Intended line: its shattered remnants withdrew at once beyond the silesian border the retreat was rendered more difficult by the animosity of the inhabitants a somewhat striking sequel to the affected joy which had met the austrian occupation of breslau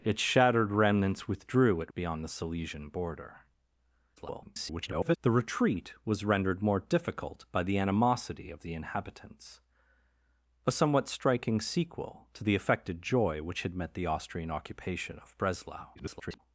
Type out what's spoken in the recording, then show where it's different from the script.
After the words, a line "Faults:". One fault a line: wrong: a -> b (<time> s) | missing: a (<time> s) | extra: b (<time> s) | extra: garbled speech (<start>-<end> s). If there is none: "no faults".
its shattered remnants withdrew at beyond the silesian border [garbled] the retreat was rendered more difficult by the animosity of the inhabitants a somewhat striking sequel to the affected joy which had met the austrian occupation of breslau [garbled]
Faults:
missing: once (1.9 s)
extra: garbled speech (4.2-5.2 s)
extra: garbled speech (15.9-16.4 s)